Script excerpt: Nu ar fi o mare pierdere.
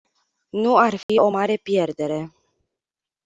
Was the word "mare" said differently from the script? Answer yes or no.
no